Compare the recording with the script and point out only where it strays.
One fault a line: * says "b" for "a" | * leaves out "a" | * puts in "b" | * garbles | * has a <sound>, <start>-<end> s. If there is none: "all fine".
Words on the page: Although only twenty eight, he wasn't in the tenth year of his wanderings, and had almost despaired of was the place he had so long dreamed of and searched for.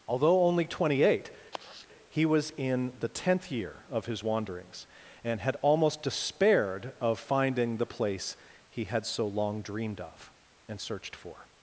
* has a sigh, 1.5-1.9 s
* says "was" for "wasn't"
* says "finding" for "was"